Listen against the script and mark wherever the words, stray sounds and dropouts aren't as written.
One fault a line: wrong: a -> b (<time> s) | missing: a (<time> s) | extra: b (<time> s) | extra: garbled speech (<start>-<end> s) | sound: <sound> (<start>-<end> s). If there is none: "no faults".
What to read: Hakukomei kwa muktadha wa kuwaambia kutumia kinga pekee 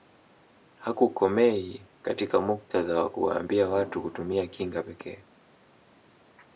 wrong: kwa -> katika (2.0 s)
extra: watu (3.7 s)